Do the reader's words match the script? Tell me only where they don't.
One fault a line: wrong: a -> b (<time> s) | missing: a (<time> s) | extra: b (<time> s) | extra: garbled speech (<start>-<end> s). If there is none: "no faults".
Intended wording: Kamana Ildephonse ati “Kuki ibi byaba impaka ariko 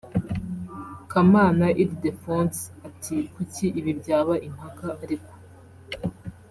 no faults